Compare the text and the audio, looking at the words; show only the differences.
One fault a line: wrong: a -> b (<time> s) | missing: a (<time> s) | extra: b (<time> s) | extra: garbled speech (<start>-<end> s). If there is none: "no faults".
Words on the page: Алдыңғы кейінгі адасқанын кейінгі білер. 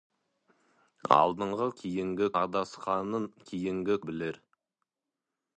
no faults